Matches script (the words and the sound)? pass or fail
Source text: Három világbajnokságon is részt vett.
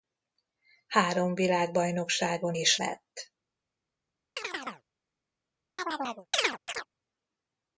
fail